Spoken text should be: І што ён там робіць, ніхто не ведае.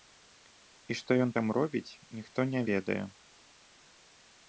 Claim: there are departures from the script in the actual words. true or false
false